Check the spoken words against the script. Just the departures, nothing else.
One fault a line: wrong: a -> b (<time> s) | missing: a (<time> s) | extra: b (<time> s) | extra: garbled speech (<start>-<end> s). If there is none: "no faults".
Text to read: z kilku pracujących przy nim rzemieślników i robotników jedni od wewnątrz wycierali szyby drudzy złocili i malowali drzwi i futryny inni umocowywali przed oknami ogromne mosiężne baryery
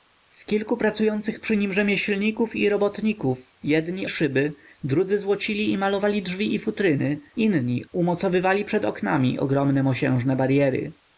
missing: od wewnątrz wycierali (4.1 s)